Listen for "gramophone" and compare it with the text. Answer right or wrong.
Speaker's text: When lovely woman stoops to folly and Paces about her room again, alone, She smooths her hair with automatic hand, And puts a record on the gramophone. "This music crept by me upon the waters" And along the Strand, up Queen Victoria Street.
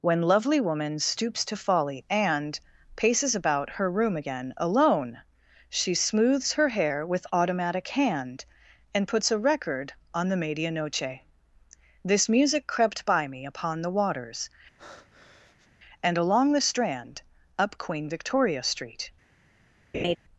wrong